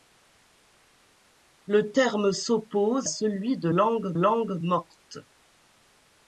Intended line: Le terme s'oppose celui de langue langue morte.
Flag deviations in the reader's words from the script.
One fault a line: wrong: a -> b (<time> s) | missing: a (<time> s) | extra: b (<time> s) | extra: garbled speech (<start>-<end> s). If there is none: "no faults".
no faults